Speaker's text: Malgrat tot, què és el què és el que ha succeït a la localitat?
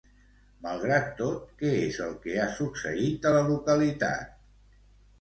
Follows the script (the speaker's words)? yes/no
no